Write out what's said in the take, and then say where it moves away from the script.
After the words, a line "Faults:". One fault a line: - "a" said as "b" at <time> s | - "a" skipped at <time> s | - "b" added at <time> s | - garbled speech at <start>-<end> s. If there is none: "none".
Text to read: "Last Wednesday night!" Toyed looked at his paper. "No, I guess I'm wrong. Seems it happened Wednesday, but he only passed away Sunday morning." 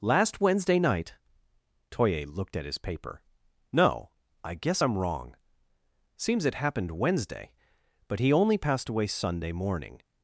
"Last Wednesday night!" Toye looked at his paper. "No, I guess I'm wrong. Seems it happened Wednesday, but he only passed away Sunday morning."
Faults:
- "Toyed" said as "Toye" at 1.9 s